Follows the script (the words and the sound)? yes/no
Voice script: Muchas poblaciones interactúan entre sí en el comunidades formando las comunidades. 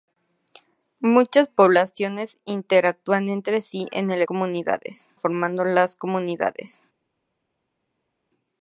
yes